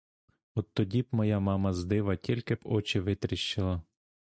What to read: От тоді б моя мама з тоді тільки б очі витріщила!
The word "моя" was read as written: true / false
true